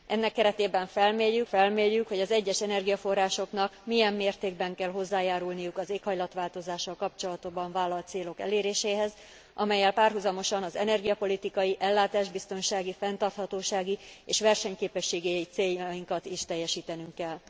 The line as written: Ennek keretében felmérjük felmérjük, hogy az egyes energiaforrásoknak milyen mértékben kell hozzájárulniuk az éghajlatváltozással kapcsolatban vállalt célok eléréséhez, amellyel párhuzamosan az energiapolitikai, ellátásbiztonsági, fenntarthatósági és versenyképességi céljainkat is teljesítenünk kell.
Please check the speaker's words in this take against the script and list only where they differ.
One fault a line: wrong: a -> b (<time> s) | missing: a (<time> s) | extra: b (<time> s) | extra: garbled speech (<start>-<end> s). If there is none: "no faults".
no faults